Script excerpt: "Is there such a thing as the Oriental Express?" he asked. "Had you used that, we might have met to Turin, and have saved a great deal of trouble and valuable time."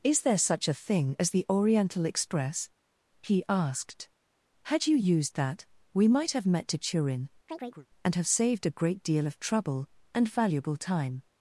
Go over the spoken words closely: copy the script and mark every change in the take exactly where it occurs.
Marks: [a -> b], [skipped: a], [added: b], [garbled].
"Is there such a thing as the Oriental Express?" he asked. "Had you used that, we might have met to Turin, and have saved a great deal of trouble and valuable time."